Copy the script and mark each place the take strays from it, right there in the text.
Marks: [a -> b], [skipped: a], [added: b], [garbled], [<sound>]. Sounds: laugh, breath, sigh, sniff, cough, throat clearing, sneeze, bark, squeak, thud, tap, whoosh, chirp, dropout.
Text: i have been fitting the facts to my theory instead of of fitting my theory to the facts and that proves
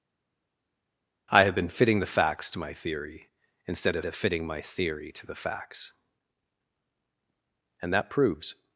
i have been fitting the facts to my theory instead of of fitting my theory to the facts and that proves